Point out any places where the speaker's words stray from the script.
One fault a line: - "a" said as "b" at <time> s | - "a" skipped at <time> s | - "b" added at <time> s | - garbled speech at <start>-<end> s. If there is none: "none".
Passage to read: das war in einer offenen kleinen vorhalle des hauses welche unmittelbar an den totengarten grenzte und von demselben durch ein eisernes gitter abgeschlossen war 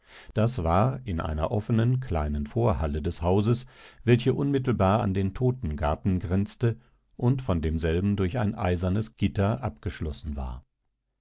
none